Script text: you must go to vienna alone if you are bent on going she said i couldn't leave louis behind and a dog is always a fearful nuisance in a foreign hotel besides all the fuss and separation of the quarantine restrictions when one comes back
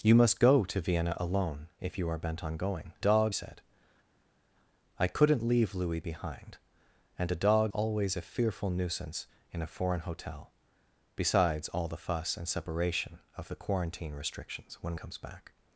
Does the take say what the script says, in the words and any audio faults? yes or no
no